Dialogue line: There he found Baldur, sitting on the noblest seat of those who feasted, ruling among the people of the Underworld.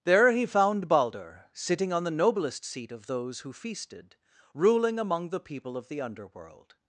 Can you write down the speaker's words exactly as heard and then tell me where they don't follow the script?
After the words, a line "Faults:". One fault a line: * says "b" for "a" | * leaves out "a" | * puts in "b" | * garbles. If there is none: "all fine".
There he found Baldur, sitting on the noblest seat of those who feasted, ruling among the people of the Underworld.
Faults:
all fine